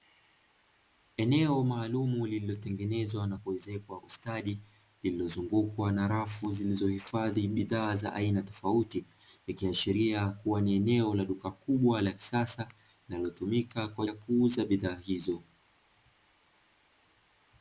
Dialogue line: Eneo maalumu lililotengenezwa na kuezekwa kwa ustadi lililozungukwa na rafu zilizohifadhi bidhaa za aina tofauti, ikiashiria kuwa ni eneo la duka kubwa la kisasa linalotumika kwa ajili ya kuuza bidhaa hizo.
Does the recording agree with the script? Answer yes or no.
no